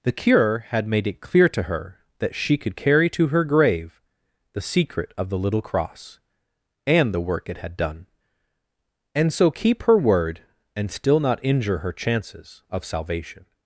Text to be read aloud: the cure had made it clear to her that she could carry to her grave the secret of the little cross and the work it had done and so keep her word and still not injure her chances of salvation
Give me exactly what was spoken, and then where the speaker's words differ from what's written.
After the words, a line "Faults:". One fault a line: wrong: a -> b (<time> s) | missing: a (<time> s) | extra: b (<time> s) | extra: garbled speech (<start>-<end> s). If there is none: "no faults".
the cure had made it clear to her that she could carry to her grave the secret of the little cross and the work it had done and so keep her word and still not injure her chances of salvation
Faults:
no faults